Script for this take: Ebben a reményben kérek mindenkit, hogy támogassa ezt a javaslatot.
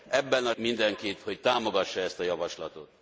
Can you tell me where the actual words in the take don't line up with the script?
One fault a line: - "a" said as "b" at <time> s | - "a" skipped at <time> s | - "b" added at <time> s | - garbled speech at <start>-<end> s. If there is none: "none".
- "reményben kérek" skipped at 0.5 s